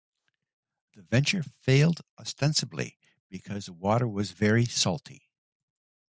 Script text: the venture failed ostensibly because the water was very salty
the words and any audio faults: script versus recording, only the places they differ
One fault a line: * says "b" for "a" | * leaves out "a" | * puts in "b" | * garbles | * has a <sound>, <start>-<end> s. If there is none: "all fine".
all fine